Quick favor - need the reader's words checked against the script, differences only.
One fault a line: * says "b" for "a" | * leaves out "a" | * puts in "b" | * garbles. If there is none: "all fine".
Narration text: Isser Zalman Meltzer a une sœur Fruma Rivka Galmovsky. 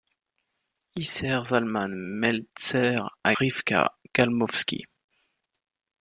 * leaves out "une sœur Fruma"